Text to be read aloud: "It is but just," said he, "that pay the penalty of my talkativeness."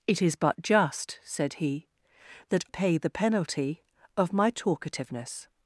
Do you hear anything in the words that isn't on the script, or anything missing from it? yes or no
no